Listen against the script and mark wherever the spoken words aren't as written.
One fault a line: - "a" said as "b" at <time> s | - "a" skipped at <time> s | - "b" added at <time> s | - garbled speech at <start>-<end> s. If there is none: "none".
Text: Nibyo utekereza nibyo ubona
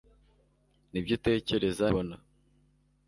- "nibyo" skipped at 1.9 s